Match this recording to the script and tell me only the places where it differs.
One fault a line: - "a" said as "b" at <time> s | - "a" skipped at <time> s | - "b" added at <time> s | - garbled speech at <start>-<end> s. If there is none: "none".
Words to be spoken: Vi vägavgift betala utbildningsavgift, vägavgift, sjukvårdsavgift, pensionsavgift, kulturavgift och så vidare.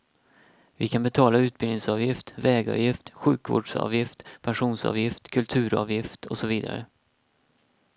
- "vägavgift" said as "kan" at 0.9 s